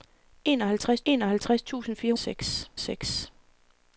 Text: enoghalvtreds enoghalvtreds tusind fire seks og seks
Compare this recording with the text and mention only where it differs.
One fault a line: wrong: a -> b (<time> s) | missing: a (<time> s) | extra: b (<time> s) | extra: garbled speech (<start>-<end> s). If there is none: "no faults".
no faults